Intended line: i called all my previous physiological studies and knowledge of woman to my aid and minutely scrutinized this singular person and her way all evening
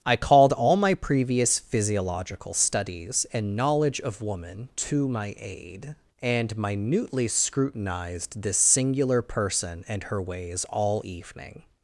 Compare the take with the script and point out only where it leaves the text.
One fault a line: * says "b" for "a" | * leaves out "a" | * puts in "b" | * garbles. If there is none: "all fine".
* says "ways" for "way"